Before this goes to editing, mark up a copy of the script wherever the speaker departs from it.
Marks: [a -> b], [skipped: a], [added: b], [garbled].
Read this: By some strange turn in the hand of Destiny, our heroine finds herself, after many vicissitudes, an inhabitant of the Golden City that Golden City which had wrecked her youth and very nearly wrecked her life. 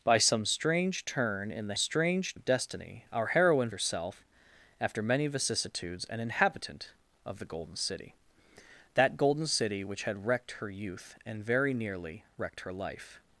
By some strange turn in the [hand -> strange] of Destiny, our heroine [skipped: finds] herself, after many vicissitudes, an inhabitant of the Golden City that Golden City which had wrecked her youth and very nearly wrecked her life.